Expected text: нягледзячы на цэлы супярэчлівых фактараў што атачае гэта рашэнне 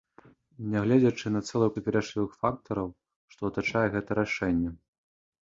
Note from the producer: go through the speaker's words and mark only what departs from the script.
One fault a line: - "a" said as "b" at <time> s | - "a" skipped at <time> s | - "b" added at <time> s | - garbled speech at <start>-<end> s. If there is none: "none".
none